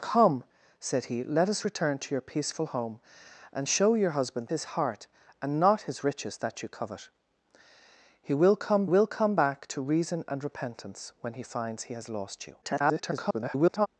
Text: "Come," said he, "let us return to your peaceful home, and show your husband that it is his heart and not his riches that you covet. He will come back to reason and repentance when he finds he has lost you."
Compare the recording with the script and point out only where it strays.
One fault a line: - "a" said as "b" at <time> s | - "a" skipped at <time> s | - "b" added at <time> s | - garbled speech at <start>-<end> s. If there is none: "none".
- "that it is" skipped at 4.5 s
- "will come" added at 8.8 s
- garbled speech at 12.6-13.9 s